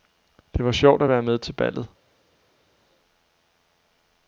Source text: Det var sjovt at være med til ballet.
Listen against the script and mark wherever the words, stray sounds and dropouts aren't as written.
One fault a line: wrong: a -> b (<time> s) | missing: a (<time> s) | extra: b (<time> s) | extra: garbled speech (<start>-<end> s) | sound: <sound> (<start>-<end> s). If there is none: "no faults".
no faults